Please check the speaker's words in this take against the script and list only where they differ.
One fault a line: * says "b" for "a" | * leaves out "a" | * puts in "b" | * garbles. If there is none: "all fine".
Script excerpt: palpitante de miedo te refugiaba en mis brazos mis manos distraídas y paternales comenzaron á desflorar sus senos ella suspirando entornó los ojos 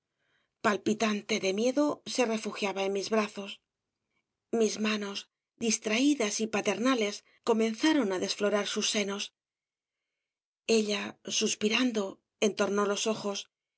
* says "se" for "te"